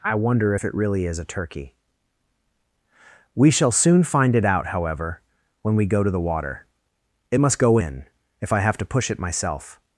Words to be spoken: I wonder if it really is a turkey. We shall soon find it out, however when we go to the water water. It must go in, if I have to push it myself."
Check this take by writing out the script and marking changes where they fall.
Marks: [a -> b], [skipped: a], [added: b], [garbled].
I wonder if it really is a turkey. We shall soon find it out, however when we go to the water [skipped: water.] It must go in, if I have to push it myself."